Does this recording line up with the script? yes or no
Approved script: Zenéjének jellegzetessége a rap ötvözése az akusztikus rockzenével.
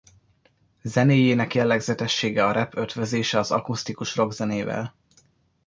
yes